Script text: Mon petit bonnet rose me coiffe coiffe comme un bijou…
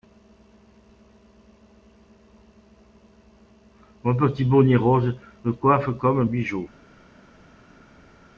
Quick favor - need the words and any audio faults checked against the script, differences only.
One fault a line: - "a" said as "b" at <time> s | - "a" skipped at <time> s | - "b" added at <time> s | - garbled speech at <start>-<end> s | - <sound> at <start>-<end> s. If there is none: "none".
- "coiffe" skipped at 5.9 s